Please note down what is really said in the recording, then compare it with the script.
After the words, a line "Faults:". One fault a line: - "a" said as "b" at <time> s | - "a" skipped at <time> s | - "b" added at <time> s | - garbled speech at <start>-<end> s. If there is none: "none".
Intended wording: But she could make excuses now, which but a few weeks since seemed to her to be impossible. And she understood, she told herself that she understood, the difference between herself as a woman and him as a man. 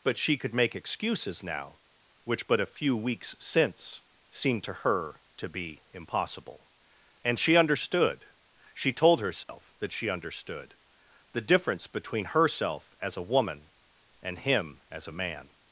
But she could make excuses now, which but a few weeks since seemed to her to be impossible. And she understood, she told herself that she understood, the difference between herself as a woman and him as a man.
Faults:
none